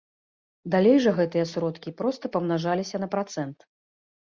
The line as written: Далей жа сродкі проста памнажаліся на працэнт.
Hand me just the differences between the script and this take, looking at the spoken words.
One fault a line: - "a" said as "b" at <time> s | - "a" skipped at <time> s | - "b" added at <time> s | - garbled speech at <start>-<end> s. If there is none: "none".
- "гэтыя" added at 1.2 s